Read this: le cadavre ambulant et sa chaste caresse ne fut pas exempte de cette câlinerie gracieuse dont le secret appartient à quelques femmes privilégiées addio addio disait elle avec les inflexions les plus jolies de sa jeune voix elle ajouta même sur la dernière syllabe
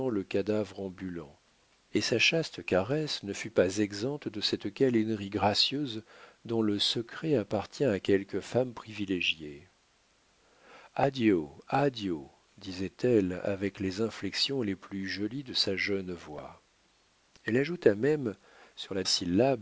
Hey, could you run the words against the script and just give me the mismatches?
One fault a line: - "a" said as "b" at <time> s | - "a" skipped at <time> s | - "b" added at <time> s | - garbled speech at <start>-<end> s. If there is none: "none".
- "dernière" skipped at 19.0 s